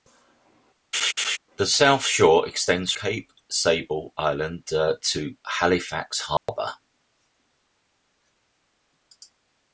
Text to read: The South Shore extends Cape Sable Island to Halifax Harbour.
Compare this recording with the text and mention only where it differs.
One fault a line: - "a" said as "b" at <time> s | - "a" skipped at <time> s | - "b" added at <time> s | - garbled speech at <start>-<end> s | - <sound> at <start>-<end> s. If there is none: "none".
- laugh at 0.9-1.4 s
- dropout at 6.4-6.5 s